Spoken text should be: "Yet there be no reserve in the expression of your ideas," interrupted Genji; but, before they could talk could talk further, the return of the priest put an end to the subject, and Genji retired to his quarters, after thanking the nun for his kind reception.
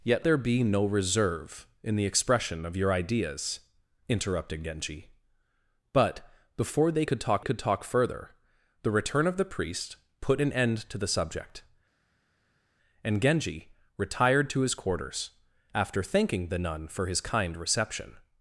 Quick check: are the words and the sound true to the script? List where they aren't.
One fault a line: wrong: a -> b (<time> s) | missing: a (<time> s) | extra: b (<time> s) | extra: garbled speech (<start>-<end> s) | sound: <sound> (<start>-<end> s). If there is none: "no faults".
no faults